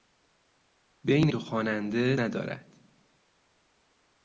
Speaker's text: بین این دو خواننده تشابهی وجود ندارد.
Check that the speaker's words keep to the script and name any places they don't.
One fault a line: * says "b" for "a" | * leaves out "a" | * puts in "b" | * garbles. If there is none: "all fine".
* leaves out "این"
* leaves out "تشابهی وجود"